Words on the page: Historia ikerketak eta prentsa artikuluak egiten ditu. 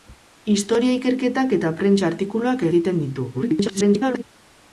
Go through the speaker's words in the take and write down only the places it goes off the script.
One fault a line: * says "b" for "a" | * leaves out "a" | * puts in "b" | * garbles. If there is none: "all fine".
* garbles